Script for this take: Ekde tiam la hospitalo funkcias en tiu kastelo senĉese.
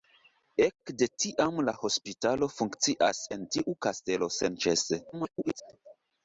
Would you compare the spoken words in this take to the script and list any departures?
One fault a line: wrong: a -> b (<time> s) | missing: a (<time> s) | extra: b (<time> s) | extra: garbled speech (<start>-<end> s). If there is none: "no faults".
extra: garbled speech (5.1-5.6 s)